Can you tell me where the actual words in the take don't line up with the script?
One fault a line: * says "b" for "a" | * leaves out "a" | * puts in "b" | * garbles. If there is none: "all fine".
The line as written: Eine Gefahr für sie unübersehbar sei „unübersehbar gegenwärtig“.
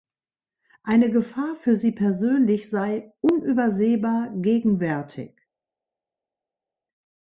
* says "persönlich" for "unübersehbar"